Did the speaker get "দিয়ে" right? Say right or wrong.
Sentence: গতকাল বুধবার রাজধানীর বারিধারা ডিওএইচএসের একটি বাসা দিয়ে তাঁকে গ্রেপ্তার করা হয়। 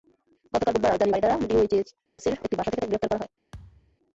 wrong